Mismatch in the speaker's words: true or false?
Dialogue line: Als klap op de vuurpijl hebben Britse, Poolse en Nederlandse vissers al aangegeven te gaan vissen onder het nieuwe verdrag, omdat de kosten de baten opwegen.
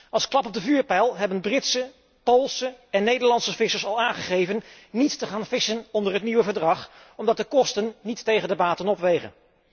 true